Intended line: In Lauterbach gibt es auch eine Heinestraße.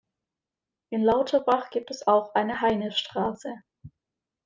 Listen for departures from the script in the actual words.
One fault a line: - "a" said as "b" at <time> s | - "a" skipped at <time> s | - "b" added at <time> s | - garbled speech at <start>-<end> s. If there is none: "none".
none